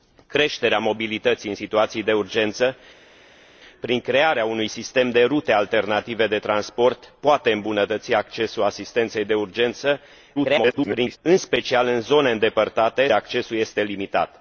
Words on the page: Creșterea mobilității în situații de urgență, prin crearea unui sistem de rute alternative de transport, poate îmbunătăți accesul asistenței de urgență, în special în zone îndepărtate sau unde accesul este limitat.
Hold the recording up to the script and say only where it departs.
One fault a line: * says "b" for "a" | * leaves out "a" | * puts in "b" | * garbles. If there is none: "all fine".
* garbles
* leaves out "sau unde"